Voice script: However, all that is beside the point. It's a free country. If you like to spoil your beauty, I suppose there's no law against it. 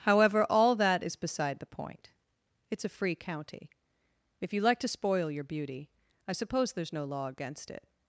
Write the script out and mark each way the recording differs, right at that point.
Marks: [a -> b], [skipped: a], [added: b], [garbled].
However, all that is beside the point. It's a free [country. -> county] If you like to spoil your beauty, I suppose there's no law against it.